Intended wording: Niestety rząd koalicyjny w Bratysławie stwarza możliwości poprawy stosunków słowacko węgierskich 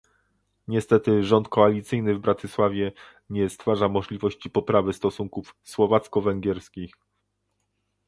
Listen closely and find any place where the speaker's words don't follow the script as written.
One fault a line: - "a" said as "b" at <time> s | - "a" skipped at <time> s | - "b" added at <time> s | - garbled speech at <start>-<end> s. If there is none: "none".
- "nie" added at 3.3 s